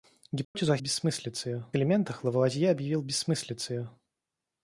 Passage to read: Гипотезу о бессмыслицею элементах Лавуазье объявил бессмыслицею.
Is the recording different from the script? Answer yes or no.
no